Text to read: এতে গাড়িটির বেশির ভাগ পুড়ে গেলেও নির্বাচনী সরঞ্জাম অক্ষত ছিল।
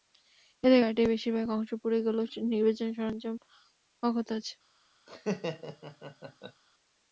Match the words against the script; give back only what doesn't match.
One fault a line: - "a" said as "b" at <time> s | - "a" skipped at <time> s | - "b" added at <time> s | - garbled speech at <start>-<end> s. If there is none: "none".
- "অংশ" added at 1.6 s
- "ছিল" said as "আছে" at 4.4 s